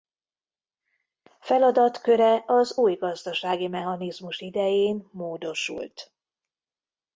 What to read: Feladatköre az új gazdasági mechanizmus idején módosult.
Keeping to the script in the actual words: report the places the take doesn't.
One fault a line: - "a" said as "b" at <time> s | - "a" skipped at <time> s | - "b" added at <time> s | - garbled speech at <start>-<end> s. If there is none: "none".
none